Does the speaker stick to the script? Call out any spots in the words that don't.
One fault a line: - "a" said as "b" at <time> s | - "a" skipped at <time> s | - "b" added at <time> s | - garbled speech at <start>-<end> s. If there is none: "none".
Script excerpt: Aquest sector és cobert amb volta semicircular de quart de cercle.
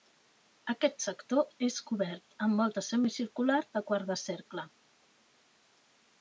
none